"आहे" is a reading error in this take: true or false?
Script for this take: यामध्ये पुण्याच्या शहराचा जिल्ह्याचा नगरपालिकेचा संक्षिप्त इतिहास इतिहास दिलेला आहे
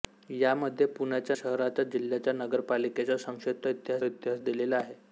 false